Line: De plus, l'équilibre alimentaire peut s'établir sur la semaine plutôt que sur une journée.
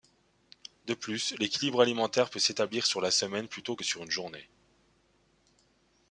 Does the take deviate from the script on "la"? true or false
false